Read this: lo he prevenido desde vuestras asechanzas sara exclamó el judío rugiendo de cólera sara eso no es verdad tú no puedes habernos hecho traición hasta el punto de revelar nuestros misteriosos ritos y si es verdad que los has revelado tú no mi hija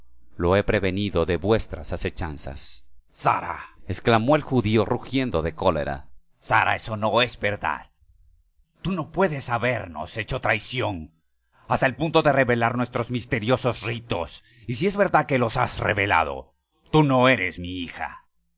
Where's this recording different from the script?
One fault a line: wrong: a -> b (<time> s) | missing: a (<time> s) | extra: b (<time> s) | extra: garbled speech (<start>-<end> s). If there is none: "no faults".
wrong: desde -> de (1.3 s)
extra: eres (17.3 s)